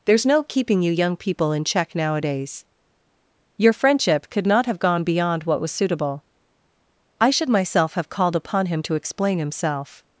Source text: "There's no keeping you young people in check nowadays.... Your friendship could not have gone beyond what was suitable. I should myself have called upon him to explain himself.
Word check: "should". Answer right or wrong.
right